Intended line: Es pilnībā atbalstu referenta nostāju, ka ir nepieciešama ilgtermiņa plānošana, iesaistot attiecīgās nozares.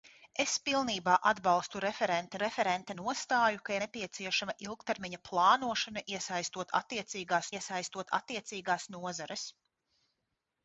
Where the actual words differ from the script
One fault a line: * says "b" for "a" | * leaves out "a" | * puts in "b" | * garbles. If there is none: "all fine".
* puts in "referenta"
* leaves out "ir"
* puts in "iesaistot attiecīgās"